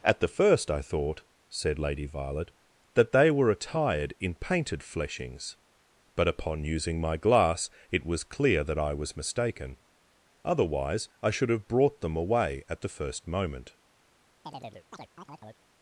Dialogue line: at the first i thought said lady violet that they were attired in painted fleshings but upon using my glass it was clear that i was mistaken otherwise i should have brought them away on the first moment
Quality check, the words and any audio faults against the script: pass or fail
fail